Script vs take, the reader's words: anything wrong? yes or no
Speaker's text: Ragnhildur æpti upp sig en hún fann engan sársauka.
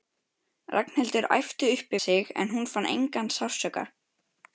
no